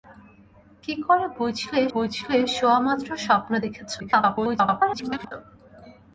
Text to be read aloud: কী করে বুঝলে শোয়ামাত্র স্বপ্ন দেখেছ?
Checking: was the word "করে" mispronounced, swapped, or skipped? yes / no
no